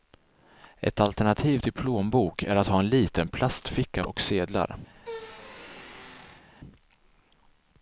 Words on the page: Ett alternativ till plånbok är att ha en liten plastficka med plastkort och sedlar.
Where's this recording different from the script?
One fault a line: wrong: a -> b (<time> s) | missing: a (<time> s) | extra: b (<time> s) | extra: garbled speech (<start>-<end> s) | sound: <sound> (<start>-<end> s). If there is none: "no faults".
missing: med plastkort (4.0 s)
sound: squeak (4.9-6.5 s)